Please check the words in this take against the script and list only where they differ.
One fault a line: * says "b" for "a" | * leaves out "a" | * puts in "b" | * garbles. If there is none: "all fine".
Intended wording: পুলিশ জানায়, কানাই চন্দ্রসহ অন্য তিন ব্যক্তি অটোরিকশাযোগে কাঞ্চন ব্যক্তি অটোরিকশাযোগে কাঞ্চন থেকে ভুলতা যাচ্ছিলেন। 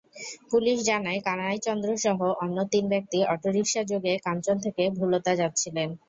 * leaves out "ব্যক্তি অটোরিকশাযোগে কাঞ্চন"